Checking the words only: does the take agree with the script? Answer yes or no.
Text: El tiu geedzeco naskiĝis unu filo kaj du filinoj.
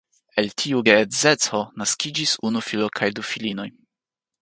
yes